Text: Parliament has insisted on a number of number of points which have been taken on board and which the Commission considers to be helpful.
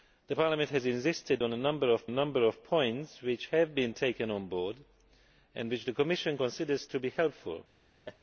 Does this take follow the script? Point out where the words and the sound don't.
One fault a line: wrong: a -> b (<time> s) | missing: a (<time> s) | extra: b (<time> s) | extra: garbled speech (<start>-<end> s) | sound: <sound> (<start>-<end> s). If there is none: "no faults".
sound: laugh (8.0-8.2 s)